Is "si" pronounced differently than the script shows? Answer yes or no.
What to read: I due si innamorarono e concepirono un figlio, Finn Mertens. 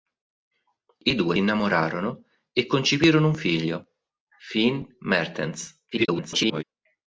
yes